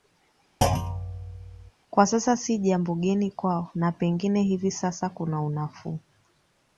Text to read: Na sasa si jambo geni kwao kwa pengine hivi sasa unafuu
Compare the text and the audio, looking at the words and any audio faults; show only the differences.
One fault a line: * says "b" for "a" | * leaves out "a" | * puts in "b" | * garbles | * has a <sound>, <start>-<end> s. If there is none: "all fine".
* has a thud, 0.6-1.7 s
* says "Kwa" for "Na"
* says "na" for "kwa"
* puts in "kuna"